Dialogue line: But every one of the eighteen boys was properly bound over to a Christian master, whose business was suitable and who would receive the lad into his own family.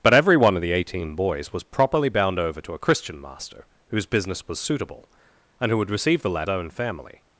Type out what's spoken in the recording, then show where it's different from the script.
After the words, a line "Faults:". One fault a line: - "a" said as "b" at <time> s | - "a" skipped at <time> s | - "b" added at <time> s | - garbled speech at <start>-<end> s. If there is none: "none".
But every one of the eighteen boys was properly bound over to a Christian master, whose business was suitable and who would receive the lad own family.
Faults:
- "into his" skipped at 6.5 s